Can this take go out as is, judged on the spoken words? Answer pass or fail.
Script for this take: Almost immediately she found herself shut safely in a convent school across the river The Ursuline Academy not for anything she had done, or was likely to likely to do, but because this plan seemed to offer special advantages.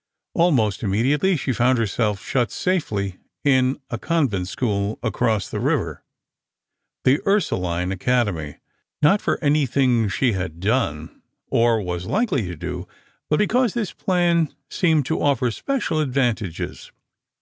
fail